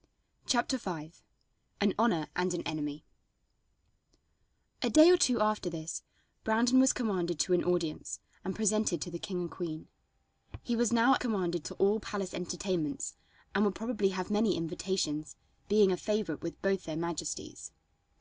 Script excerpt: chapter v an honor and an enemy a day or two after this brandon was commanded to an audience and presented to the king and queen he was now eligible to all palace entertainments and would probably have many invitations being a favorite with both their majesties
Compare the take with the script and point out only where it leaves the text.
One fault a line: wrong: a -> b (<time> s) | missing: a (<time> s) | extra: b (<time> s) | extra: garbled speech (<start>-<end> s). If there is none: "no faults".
wrong: eligible -> commanded (11.2 s)